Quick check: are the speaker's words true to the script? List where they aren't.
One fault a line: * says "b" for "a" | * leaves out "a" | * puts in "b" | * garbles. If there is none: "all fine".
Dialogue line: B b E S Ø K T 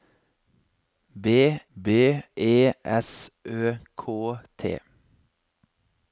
all fine